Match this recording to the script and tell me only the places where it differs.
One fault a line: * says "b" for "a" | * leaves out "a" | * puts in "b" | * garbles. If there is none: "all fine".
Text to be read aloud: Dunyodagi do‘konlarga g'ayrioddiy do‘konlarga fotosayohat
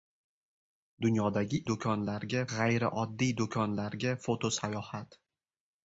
all fine